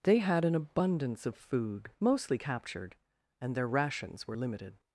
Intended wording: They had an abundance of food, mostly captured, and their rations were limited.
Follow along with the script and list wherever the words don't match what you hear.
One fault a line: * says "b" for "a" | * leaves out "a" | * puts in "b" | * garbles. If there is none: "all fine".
all fine